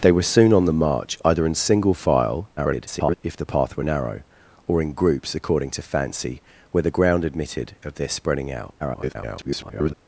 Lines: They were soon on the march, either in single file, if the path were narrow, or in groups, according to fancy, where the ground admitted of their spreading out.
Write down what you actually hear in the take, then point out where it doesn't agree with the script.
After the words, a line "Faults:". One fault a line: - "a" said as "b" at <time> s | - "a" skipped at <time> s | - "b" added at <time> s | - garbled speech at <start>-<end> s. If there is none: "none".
They were soon on the march, either in single file, [garbled] if the path were narrow, or in groups, according to fancy, where the ground admitted of their spreading out. [garbled]
Faults:
- garbled speech at 2.6-3.2 s
- garbled speech at 8.8-9.9 s